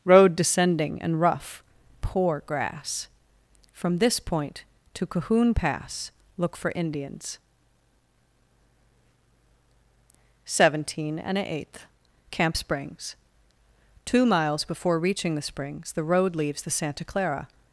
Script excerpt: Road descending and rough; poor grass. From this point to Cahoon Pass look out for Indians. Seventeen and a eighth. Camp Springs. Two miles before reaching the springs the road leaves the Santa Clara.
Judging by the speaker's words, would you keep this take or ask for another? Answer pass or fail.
fail